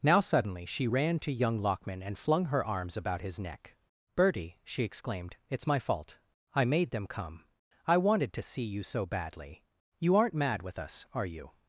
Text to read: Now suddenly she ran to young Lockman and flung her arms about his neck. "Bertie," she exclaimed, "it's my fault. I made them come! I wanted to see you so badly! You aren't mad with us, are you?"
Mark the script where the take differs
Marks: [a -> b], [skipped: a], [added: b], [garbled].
Now suddenly she ran to young Lockman and flung her arms about his neck. "Bertie," she exclaimed, "it's my fault. I made them come! I wanted to see you so badly! You aren't mad with us, are you?"